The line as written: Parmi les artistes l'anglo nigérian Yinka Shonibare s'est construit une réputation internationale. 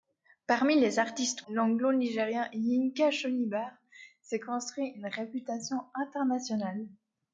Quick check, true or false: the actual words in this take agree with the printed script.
true